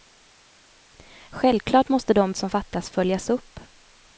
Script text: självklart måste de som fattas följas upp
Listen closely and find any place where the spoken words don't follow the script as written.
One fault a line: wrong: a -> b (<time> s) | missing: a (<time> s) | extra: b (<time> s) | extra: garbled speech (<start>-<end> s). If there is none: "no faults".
no faults